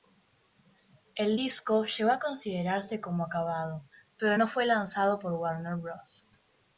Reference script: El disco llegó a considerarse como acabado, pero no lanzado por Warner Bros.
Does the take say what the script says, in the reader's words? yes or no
no